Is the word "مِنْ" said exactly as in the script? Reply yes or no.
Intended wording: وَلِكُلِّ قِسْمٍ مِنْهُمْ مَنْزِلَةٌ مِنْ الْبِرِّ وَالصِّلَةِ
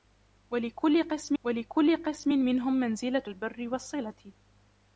no